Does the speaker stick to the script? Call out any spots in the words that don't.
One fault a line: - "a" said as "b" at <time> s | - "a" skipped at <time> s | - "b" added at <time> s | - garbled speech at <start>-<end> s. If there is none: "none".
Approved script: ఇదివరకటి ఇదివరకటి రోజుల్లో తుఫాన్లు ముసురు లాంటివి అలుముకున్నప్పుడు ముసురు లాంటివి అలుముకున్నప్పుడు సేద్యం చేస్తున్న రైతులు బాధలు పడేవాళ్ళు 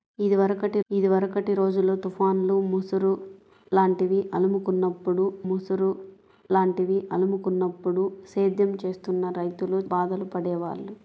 none